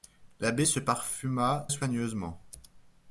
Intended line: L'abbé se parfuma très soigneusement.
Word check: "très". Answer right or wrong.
wrong